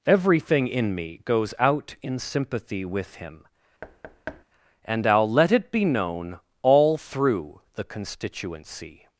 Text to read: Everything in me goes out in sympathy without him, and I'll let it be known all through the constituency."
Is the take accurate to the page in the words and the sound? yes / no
no